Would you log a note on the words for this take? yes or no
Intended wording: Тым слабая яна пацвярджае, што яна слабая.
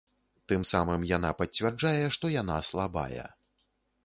yes